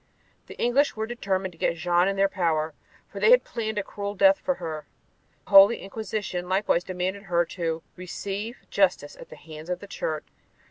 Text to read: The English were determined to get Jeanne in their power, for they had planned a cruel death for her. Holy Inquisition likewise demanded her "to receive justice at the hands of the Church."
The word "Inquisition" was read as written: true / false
true